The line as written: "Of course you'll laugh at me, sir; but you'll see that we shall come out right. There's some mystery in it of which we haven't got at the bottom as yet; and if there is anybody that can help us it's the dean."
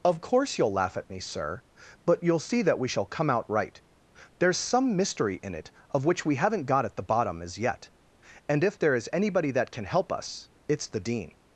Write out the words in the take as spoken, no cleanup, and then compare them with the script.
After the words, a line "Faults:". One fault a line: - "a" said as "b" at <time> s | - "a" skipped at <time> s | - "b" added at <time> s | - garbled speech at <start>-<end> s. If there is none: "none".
"Of course you'll laugh at me, sir; but you'll see that we shall come out right. There's some mystery in it of which we haven't got at the bottom as yet; and if there is anybody that can help us it's the dean."
Faults:
none